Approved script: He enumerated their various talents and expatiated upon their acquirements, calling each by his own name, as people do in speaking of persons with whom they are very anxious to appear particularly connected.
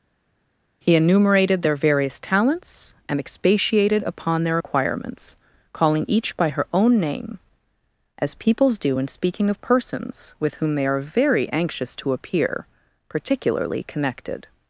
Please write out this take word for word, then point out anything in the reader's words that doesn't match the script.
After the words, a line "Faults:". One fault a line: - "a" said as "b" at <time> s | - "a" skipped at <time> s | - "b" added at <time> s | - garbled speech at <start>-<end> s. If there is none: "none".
He enumerated their various talents and expatiated upon their acquirements, calling each by her own name, as peoples do in speaking of persons with whom they are very anxious to appear particularly connected.
Faults:
- "his" said as "her" at 6.5 s
- "people" said as "peoples" at 8.3 s